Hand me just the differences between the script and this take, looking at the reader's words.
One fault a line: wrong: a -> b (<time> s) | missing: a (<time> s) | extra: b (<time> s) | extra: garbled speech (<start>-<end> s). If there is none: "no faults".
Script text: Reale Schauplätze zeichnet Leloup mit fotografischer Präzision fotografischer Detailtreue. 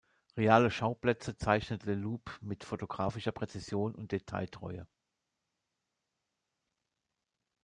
wrong: fotografischer -> und (4.0 s)